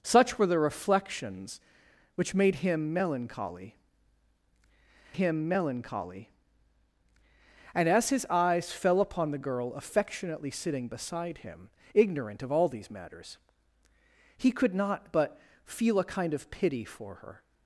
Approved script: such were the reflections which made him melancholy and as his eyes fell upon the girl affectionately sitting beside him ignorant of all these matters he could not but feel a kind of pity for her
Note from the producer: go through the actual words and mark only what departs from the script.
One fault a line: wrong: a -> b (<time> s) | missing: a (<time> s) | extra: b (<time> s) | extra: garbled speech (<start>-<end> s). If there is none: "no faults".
extra: him melancholy (5.1 s)